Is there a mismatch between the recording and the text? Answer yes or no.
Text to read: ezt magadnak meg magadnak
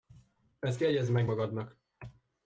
yes